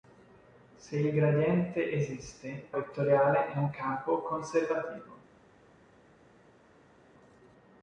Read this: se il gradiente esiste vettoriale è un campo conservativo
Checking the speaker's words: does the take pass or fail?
pass